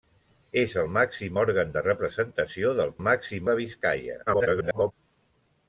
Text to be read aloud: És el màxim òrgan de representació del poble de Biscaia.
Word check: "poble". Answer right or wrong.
wrong